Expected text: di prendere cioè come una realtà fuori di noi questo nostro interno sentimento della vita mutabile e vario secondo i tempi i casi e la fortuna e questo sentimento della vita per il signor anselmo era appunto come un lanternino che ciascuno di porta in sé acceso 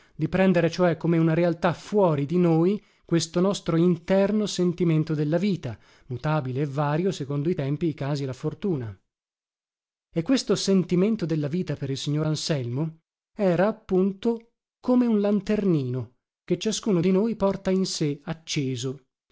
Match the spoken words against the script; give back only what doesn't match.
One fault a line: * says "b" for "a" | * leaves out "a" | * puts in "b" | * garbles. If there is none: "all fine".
* puts in "noi"